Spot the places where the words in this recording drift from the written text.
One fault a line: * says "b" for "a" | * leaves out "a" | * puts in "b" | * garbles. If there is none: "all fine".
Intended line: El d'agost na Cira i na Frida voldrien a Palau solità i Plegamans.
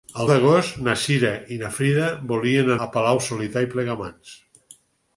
all fine